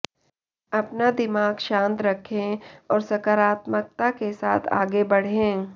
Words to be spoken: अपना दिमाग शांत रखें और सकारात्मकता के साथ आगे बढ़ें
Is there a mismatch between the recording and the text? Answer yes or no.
no